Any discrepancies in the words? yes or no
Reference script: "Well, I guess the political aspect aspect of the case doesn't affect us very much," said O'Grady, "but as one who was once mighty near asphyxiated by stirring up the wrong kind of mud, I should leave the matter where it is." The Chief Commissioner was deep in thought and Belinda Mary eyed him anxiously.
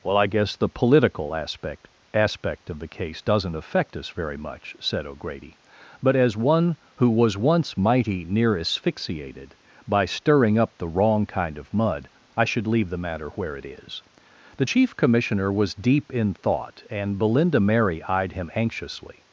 no